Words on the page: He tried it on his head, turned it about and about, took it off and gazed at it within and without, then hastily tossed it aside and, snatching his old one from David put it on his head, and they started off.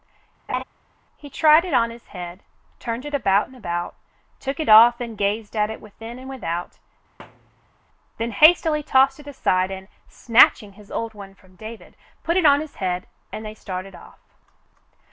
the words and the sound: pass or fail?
fail